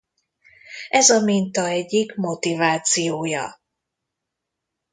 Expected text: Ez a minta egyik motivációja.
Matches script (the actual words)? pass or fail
pass